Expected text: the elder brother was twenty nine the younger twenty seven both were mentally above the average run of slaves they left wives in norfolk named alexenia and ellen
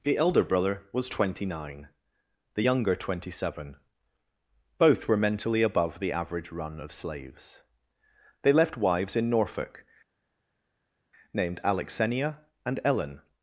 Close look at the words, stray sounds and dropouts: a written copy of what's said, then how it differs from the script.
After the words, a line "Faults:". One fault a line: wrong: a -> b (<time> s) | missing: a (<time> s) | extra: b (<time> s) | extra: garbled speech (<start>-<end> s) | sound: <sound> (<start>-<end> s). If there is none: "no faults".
the elder brother was twenty nine the younger twenty seven both were mentally above the average run of slaves they left wives in norfolk named alexenia and ellen
Faults:
no faults